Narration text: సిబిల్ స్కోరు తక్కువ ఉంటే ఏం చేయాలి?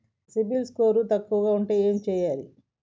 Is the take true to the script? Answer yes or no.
yes